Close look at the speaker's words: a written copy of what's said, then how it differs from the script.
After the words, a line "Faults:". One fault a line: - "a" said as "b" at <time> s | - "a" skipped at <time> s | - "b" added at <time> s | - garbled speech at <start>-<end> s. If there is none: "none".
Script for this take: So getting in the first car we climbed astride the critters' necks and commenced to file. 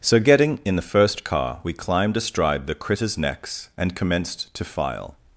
So getting in the first car we climbed astride the critters' necks and commenced to file.
Faults:
none